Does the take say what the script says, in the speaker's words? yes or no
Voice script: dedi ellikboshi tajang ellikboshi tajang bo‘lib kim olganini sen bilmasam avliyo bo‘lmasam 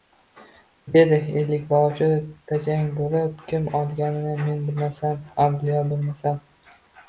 no